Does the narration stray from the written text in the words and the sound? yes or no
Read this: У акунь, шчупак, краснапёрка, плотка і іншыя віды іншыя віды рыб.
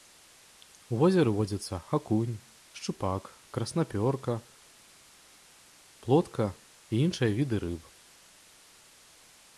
yes